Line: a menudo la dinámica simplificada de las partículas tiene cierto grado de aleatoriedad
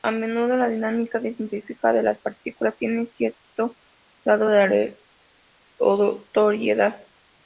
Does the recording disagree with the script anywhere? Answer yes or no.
no